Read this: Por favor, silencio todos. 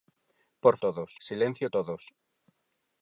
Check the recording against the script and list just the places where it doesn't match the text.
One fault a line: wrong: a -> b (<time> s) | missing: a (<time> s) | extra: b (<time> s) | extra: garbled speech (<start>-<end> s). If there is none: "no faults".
wrong: favor -> todos (0.8 s)